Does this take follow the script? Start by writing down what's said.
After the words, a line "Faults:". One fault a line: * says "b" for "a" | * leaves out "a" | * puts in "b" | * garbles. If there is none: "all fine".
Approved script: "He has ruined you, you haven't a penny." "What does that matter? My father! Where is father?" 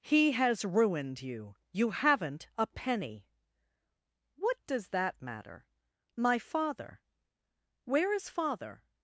"He has ruined you, you haven't a penny." "What does that matter? My father! Where is father?"
Faults:
all fine